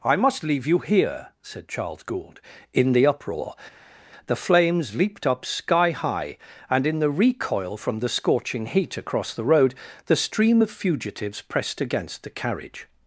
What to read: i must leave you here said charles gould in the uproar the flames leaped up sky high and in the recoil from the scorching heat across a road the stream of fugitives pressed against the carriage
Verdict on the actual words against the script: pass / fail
fail